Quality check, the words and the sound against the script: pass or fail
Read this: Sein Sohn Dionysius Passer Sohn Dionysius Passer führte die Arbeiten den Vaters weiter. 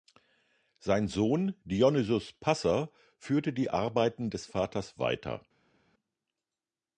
fail